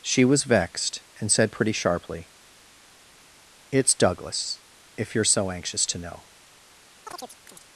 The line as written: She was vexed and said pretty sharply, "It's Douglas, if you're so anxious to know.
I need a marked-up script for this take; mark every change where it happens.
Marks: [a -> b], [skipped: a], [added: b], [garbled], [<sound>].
She was vexed and said pretty sharply, "It's Douglas, if you're so anxious to know. [chirp]